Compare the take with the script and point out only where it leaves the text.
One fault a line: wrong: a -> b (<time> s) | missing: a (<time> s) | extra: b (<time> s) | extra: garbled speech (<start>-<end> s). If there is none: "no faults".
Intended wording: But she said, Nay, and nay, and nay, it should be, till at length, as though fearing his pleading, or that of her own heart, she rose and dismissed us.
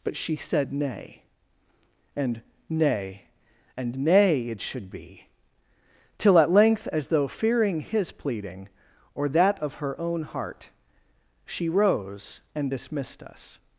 no faults